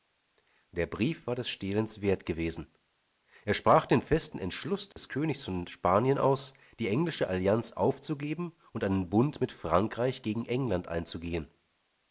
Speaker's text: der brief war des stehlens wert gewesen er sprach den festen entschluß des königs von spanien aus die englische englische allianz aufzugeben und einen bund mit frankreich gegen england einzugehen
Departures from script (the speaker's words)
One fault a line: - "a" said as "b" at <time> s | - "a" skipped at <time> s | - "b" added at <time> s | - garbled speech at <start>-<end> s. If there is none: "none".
- "englische" skipped at 7.3 s